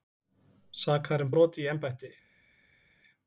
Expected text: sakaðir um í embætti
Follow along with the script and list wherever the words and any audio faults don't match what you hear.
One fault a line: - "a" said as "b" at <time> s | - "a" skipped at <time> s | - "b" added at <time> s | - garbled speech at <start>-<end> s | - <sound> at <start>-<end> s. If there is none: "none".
- "brot" added at 1.3 s